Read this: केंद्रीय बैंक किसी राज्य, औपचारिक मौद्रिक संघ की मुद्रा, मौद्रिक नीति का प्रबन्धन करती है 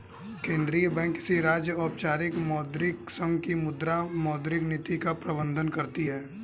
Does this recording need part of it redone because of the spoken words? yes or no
no